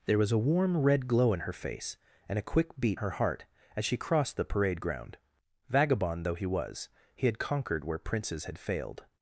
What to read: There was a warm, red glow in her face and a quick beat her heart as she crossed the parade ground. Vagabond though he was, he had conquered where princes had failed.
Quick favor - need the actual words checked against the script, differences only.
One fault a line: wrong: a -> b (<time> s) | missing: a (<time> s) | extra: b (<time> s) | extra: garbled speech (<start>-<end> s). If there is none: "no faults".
no faults